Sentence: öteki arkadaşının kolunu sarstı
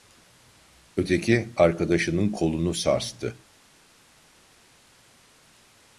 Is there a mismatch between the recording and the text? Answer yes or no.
no